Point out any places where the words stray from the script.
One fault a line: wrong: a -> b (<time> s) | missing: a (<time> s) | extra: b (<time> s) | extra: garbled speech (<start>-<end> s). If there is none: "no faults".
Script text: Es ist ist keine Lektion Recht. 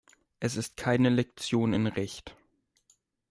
missing: ist (0.8 s)
extra: in (1.7 s)